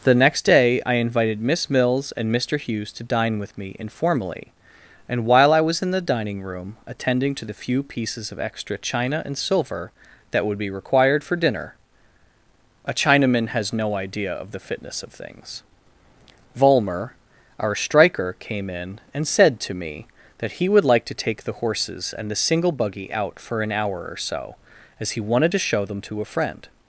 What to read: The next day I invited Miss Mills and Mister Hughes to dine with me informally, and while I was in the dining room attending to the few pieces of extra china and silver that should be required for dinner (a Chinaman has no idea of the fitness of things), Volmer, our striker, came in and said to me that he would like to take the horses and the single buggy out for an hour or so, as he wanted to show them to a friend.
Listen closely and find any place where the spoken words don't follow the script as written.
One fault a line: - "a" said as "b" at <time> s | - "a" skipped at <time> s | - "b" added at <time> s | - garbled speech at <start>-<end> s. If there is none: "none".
- "should" said as "would" at 10.4 s